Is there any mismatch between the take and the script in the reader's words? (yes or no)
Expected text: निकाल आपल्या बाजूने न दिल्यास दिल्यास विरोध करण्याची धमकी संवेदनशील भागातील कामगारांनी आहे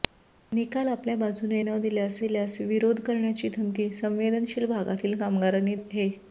no